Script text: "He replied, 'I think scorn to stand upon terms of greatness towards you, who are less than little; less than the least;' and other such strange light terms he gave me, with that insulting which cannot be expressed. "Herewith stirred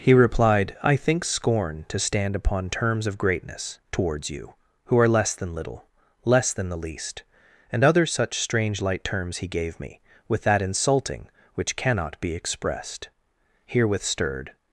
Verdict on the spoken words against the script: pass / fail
pass